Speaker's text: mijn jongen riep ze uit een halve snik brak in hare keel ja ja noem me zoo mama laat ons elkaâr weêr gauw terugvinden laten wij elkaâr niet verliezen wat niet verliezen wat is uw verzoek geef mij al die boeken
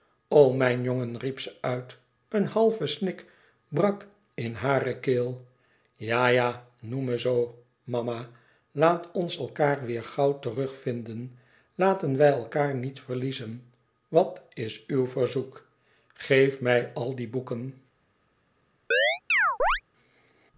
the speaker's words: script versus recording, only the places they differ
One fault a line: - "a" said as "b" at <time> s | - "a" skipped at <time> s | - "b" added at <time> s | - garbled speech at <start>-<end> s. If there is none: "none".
- "niet verliezen wat" skipped at 14.4 s